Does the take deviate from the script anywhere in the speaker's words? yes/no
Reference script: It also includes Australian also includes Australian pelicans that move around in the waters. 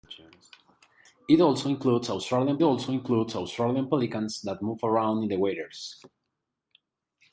no